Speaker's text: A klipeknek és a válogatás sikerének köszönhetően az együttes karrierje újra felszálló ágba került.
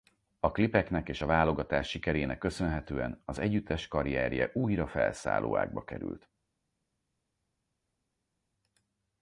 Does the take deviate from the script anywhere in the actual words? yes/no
no